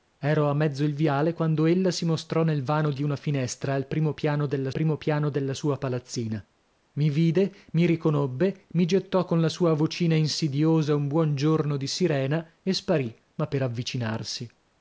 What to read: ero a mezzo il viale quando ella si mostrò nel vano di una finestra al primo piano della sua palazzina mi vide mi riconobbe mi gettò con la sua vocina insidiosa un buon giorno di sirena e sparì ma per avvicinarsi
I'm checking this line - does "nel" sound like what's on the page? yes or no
yes